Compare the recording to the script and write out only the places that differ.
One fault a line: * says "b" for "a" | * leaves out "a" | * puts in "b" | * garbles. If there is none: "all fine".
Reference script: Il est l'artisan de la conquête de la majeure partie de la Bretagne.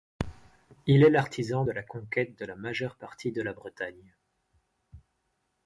all fine